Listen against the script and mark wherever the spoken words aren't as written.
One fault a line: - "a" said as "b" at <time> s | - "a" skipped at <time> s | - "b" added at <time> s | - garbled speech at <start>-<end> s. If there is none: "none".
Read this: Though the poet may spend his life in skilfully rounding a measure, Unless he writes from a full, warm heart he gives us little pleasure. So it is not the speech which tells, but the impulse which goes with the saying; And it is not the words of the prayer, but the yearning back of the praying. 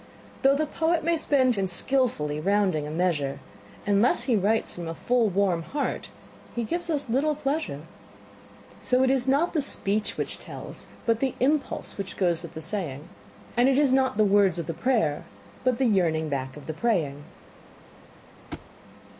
- "his life" skipped at 1.6 s